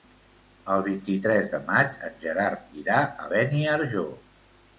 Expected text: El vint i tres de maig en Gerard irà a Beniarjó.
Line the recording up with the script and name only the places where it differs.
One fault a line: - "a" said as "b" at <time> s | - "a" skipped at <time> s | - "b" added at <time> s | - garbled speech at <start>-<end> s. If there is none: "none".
none